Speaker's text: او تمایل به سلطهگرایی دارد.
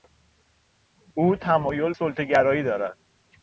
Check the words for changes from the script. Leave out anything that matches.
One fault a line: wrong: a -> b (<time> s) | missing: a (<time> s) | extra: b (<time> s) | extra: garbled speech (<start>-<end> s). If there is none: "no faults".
missing: به (1.9 s)